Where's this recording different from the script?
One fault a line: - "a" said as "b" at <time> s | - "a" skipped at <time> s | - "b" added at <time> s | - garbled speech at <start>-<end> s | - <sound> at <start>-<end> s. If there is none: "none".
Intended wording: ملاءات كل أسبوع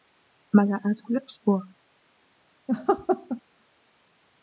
- laugh at 2.7-3.4 s